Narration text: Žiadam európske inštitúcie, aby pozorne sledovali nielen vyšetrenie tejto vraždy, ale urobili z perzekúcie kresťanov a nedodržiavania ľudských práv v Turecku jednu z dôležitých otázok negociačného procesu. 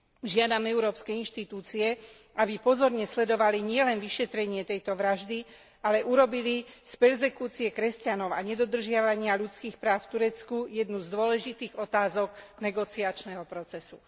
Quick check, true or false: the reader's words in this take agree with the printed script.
true